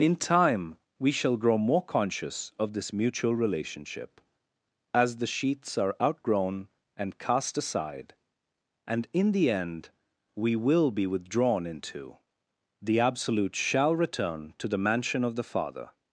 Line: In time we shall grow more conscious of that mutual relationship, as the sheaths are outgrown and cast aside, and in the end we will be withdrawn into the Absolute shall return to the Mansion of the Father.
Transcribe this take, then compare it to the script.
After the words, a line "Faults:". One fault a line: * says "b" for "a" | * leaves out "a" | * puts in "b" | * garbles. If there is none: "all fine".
In time we shall grow more conscious of this mutual relationship, as the sheaths are outgrown and cast aside, and in the end we will be withdrawn into the Absolute shall return to the Mansion of the Father.
Faults:
* says "this" for "that"